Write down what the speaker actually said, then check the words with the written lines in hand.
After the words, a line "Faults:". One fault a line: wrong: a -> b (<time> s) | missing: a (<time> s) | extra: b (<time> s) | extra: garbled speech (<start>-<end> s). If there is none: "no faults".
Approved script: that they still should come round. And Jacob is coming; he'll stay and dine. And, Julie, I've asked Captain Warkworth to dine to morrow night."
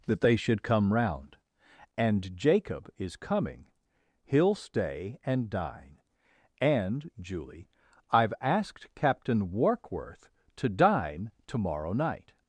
that they should come round. And Jacob is coming; he'll stay and dine. And, Julie, I've asked Captain Warkworth to dine to morrow night."
Faults:
missing: still (0.3 s)